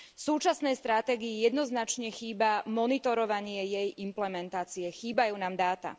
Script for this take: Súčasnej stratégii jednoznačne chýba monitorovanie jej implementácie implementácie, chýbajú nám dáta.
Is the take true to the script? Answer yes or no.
no